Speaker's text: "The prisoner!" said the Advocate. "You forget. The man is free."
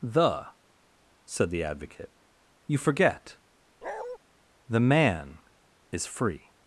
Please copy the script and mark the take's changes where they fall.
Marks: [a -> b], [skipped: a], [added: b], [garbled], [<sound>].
"The [skipped: prisoner!"] said the Advocate. "You forget. [bark] The man is free."